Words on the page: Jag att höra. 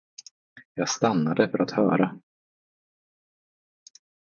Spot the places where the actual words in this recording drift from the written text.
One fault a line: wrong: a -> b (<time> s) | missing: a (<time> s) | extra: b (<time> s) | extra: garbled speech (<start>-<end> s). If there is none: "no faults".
extra: stannade för (0.9 s)